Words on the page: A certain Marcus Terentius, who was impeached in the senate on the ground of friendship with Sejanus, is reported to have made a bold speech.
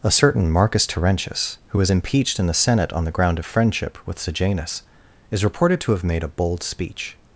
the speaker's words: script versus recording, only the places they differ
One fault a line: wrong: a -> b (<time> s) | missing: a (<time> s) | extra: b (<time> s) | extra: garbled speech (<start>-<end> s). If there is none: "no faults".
no faults